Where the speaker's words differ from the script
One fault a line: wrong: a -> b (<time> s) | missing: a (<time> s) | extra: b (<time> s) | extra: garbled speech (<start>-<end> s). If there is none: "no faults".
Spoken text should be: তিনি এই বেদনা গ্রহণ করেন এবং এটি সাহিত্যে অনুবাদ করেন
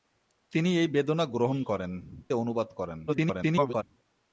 missing: এবং এটি সাহিত্যে (1.9 s)
extra: garbled speech (3.1-3.8 s)